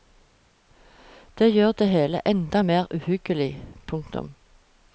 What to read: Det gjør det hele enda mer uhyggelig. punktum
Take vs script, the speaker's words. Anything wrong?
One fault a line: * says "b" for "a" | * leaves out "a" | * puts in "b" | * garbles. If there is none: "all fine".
all fine